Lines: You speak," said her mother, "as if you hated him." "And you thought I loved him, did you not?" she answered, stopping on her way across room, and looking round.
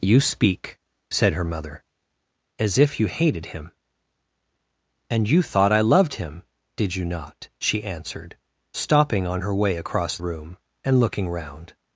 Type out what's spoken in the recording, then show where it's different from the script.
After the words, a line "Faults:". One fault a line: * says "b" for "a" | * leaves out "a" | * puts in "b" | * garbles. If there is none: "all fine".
You speak," said her mother, "as if you hated him." "And you thought I loved him, did you not?" she answered, stopping on her way across room, and looking round.
Faults:
all fine